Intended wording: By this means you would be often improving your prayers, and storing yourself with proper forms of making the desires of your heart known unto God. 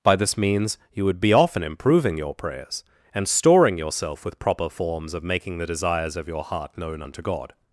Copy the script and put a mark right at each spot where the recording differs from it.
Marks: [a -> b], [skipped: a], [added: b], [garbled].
By this means you would be often improving your prayers, and storing yourself with proper forms of making the desires of your heart known unto God.